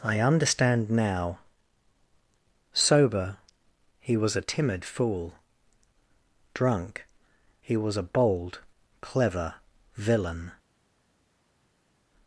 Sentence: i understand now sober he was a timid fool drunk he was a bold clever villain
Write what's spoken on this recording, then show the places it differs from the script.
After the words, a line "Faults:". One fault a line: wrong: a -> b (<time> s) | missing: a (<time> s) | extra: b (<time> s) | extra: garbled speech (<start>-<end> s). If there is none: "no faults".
i understand now sober he was a timid fool drunk he was a bold clever villain
Faults:
no faults